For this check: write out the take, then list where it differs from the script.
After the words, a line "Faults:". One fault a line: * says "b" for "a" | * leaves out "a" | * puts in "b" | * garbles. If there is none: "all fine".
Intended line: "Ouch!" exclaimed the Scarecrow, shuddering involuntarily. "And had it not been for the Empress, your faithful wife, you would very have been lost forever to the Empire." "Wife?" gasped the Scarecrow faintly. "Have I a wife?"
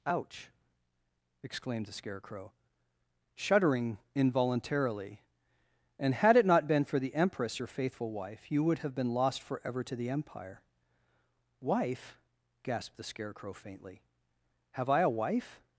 "Ouch!" exclaimed the Scarecrow, shuddering involuntarily. "And had it not been for the Empress, your faithful wife, you would have been lost forever to the Empire." "Wife?" gasped the Scarecrow faintly. "Have I a wife?"
Faults:
* leaves out "very"